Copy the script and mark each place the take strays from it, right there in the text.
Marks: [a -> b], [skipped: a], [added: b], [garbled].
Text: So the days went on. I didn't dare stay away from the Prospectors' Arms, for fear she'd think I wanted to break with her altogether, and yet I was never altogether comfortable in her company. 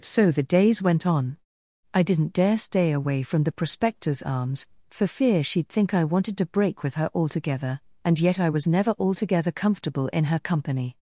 So the days went on. I didn't dare stay away from the Prospectors' Arms, for fear she'd think I wanted to break with her altogether, and yet I was never altogether comfortable in her company.